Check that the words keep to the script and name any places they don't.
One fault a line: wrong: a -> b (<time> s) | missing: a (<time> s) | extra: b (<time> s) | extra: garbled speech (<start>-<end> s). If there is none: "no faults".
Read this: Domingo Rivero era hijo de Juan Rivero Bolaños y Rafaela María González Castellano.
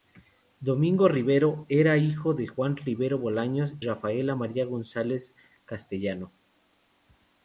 missing: y (3.8 s)